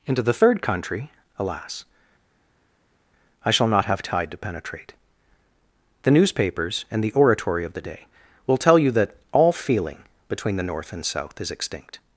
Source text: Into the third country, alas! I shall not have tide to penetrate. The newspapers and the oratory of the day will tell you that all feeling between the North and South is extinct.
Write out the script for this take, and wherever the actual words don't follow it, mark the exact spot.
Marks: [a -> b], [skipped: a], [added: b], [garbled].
Into the third country, alas! I shall not have tide to penetrate. The newspapers and the oratory of the day will tell you that all feeling between the North and South is extinct.